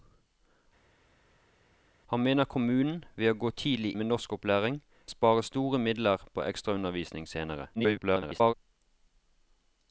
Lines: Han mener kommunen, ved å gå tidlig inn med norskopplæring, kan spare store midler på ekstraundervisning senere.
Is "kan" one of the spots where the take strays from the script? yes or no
yes